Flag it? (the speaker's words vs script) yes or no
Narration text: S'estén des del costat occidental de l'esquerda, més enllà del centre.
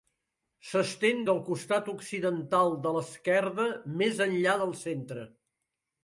yes